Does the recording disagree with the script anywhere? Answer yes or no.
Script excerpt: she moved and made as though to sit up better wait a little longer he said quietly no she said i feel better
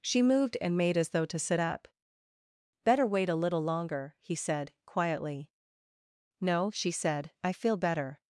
no